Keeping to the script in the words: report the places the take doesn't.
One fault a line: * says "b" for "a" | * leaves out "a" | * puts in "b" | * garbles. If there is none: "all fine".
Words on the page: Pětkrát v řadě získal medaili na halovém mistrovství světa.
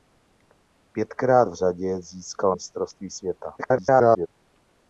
* leaves out "medaili na halovém"
* garbles